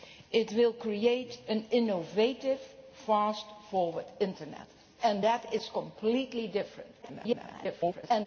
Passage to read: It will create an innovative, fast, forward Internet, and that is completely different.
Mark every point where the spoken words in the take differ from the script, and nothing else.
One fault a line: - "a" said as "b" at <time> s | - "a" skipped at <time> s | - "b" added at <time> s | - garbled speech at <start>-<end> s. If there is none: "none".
- garbled speech at 7.0-8.3 s